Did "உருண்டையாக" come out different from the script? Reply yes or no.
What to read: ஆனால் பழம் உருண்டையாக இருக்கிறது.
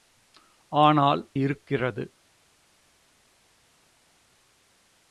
yes